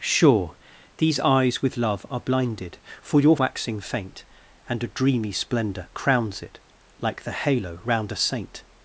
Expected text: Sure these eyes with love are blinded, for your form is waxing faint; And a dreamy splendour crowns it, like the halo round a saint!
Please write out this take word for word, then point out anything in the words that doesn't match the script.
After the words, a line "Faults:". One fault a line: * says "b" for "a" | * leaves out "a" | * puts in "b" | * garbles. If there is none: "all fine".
Sure these eyes with love are blinded, for your waxing faint; And a dreamy splendour crowns it, like the halo round a saint!
Faults:
* leaves out "form is"